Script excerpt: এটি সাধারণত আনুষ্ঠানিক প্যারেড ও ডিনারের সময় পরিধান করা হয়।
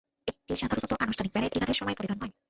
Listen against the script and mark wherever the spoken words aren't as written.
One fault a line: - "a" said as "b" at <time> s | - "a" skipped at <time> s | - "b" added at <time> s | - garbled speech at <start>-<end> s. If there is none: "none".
- "ও" skipped at 1.5 s
- "করা" skipped at 2.2 s